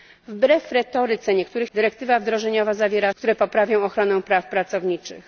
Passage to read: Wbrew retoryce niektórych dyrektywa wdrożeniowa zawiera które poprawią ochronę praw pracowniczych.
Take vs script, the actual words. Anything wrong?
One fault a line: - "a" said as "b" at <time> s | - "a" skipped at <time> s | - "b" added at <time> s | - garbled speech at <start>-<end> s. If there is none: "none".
none